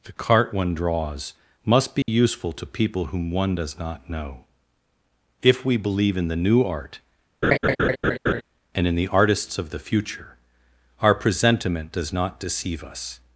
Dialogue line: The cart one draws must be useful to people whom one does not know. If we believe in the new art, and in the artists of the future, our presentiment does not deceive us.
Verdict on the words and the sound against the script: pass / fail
fail